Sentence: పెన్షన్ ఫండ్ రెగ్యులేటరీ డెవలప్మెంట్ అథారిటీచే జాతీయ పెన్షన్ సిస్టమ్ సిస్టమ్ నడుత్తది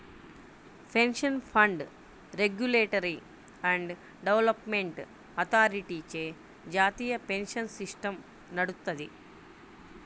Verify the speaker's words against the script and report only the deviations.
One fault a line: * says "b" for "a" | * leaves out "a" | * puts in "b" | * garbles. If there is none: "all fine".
* puts in "అండ్"
* leaves out "సిస్టమ్"